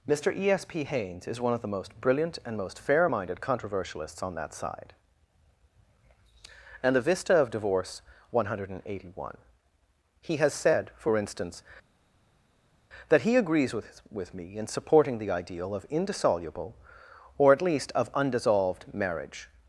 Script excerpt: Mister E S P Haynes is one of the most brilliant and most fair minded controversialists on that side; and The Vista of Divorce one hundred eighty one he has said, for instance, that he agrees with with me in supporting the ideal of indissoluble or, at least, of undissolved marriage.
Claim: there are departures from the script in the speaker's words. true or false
false